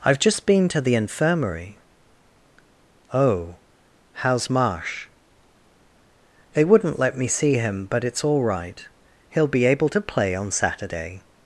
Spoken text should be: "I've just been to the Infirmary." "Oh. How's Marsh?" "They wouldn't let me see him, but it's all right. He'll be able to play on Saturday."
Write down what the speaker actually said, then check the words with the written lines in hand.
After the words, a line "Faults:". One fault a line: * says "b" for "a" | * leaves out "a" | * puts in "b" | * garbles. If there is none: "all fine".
"I've just been to the Infirmary." "Oh. How's Marsh?" "They wouldn't let me see him, but it's all right. He'll be able to play on Saturday."
Faults:
all fine